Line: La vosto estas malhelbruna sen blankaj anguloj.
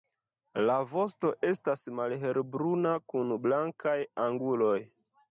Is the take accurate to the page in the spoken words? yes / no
no